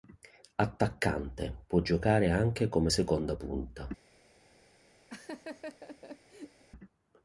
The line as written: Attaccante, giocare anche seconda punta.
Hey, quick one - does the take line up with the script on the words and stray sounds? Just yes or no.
no